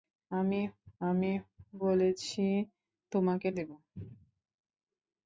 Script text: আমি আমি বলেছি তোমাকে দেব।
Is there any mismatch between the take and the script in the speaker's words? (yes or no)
no